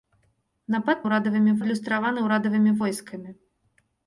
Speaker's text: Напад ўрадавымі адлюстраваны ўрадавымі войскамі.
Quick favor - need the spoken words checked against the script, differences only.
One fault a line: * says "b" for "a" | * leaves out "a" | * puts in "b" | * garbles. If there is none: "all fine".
all fine